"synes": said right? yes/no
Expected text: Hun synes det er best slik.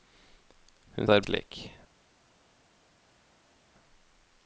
no